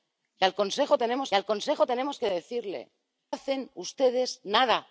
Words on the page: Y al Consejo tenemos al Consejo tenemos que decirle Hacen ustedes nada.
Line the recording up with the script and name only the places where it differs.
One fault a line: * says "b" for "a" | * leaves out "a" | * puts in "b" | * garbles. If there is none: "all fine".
all fine